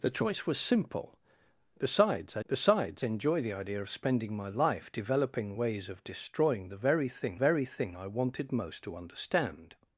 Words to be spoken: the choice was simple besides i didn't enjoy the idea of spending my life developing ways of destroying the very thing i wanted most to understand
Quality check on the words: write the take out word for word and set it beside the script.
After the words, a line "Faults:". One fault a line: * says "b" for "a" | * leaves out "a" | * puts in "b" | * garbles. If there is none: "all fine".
the choice was simple besides i besides enjoy the idea of spending my life developing ways of destroying the very thing very thing i wanted most to understand
Faults:
* says "besides" for "didn't"
* puts in "very thing"